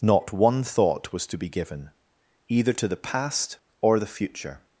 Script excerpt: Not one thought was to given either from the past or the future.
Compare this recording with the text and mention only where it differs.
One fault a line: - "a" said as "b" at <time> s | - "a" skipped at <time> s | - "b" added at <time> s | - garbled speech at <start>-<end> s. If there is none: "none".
- "be" added at 1.4 s
- "from" said as "to" at 2.7 s